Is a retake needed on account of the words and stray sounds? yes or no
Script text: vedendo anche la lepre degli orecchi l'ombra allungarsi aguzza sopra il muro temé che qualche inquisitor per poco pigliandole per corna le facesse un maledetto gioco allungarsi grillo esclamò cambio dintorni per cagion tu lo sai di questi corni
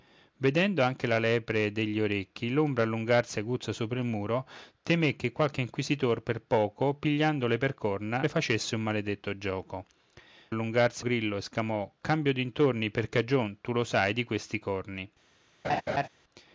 yes